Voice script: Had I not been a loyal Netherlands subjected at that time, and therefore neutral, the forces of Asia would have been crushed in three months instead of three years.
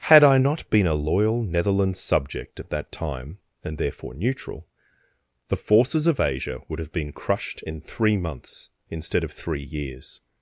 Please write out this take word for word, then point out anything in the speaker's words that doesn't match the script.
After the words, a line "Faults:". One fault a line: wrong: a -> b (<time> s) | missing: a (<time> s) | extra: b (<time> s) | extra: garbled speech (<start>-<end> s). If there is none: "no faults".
Had I not been a loyal Netherlands subject at that time, and therefore neutral, the forces of Asia would have been crushed in three months instead of three years.
Faults:
wrong: subjected -> subject (2.0 s)